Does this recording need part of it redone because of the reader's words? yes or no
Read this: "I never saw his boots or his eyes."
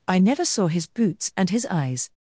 yes